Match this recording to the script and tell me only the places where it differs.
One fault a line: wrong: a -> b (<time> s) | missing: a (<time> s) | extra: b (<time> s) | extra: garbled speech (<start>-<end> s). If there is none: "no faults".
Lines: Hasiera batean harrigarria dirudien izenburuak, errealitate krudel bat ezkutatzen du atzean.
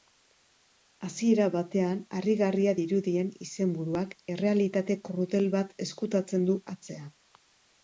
no faults